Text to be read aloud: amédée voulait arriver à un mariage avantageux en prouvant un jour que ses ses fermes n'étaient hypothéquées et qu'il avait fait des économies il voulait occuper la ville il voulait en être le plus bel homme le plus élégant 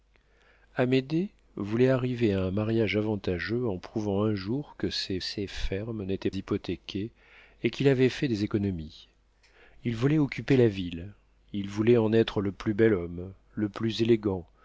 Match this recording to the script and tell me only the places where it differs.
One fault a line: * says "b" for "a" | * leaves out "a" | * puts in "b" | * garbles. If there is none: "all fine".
all fine